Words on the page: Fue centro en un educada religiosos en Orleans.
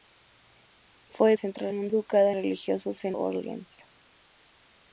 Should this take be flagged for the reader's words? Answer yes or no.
no